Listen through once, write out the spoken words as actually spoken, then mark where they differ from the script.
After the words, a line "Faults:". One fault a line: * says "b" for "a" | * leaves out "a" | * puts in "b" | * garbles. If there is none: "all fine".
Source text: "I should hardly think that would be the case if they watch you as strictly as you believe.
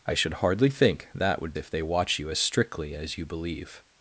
"I should hardly think that would if they watch you as strictly as you believe.
Faults:
* leaves out "be the case"